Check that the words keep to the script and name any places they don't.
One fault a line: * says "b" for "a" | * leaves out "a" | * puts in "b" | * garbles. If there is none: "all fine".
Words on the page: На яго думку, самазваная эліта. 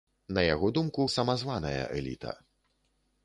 all fine